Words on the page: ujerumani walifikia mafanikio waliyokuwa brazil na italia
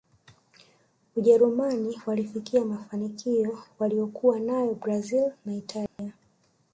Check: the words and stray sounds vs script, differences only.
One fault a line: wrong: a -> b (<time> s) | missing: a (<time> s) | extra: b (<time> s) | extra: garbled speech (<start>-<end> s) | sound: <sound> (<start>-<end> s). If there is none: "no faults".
extra: nayo (4.4 s)
sound: dropout (5.9-6.0 s)